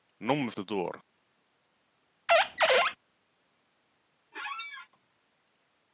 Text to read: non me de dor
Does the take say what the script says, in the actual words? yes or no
yes